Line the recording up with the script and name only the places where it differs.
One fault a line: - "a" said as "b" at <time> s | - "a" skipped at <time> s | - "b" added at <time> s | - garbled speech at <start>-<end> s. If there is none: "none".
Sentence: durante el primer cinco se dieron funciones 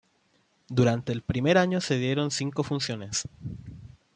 - "cinco" said as "año" at 1.6 s
- "cinco" added at 2.3 s